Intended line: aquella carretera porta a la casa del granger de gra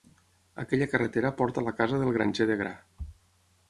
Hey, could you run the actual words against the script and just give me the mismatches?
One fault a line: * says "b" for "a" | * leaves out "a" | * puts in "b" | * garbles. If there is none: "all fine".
all fine